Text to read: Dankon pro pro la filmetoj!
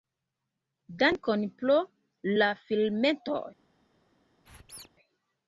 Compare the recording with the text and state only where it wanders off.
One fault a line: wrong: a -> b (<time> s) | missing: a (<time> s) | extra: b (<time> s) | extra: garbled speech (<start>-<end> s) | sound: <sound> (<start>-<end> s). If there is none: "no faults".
missing: pro (1.8 s)
sound: squeak (4.4-4.9 s)